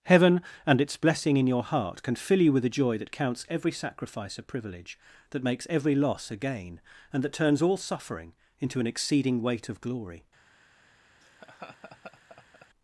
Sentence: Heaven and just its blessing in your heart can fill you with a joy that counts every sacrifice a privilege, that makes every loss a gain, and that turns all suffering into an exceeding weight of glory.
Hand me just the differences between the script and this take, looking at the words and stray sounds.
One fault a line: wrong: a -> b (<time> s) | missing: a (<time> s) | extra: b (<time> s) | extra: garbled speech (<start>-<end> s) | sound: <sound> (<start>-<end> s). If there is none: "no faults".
missing: just (0.8 s)
sound: laugh (11.2-12.7 s)